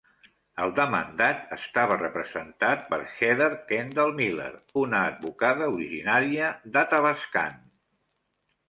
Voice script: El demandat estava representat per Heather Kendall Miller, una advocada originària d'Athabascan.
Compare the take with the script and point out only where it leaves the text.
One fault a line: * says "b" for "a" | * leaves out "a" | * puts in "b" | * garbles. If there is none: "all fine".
all fine